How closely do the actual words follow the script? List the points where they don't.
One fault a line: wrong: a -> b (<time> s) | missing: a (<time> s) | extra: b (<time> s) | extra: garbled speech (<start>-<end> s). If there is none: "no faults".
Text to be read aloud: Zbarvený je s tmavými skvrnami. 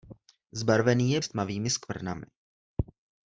no faults